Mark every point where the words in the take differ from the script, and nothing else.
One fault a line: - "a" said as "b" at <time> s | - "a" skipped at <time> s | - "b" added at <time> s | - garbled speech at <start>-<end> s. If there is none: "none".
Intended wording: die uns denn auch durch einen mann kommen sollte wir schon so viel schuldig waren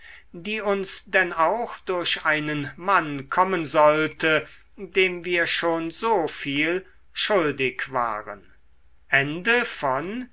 - "dem" added at 4.8 s